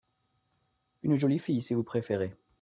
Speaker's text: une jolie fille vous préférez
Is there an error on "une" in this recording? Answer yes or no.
no